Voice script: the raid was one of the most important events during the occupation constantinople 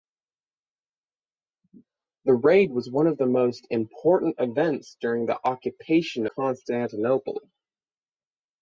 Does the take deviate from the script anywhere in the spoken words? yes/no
no